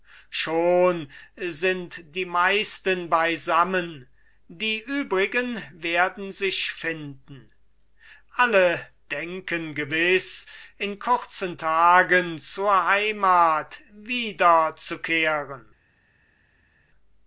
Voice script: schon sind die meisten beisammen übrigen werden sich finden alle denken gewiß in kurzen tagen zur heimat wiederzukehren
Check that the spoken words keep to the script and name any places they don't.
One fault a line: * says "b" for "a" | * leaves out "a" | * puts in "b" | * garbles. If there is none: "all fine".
* puts in "die"